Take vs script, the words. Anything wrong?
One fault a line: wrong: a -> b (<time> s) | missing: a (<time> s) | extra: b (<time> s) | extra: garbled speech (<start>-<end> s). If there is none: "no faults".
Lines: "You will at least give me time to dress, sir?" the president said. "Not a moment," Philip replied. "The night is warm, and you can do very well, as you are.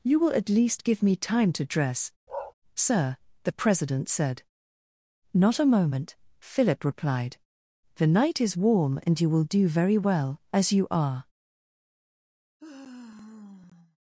wrong: can -> will (9.3 s)